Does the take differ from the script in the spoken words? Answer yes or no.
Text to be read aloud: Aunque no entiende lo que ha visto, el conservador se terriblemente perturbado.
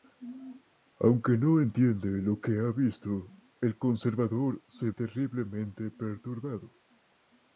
no